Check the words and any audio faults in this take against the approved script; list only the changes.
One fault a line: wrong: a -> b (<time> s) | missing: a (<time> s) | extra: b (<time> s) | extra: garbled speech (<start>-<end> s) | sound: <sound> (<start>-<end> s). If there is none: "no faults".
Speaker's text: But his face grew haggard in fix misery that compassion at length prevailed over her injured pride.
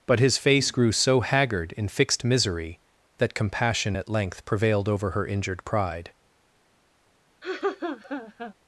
extra: so (0.9 s)
wrong: fix -> fixed (1.9 s)
sound: laugh (7.4-8.5 s)